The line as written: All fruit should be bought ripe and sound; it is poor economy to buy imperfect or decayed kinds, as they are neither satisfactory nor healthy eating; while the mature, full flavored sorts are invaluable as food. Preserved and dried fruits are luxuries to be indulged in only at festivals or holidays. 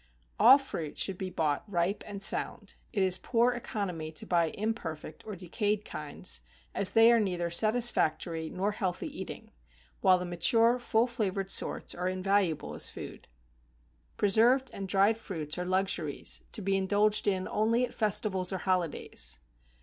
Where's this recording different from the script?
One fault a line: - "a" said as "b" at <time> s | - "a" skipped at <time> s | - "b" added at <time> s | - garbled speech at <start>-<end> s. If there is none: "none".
none